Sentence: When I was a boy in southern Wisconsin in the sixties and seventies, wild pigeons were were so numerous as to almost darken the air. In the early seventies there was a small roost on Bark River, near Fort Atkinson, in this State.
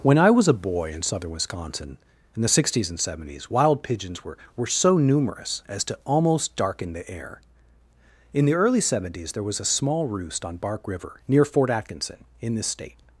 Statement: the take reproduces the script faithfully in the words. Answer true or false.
true